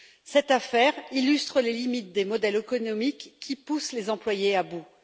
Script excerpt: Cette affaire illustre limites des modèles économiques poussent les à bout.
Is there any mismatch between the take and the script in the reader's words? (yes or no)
yes